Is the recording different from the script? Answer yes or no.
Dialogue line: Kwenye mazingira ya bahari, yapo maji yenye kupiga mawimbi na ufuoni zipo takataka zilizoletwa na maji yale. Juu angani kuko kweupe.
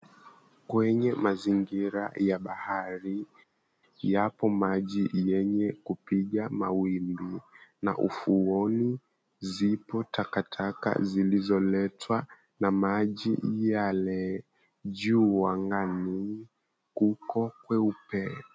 no